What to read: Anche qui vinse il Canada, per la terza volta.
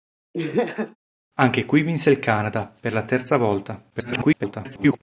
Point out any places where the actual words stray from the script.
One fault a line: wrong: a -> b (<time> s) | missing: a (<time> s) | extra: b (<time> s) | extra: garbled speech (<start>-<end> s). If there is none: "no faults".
extra: garbled speech (3.9-5.0 s)